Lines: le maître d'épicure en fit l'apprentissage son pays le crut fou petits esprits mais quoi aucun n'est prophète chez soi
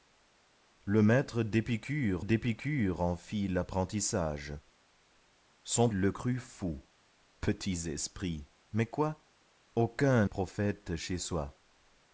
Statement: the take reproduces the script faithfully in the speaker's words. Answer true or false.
false